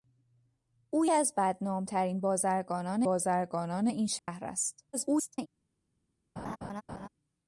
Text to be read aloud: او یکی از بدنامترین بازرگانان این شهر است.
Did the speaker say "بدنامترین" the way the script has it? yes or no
yes